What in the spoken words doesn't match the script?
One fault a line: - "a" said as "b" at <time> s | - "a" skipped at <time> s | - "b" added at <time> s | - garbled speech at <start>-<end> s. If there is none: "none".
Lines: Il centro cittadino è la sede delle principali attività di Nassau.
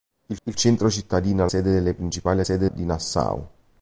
- "il" added at 0.5 s
- "la" skipped at 1.5 s
- "attività" said as "sede" at 2.4 s